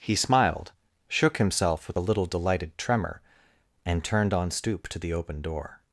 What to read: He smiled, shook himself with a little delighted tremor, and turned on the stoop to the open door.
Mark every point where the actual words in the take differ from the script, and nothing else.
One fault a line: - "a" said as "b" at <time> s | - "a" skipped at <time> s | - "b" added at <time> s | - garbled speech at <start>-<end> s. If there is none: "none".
- "the" skipped at 4.5 s